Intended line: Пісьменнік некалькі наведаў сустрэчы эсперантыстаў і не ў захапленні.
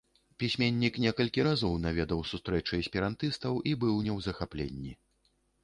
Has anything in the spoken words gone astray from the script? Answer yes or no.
yes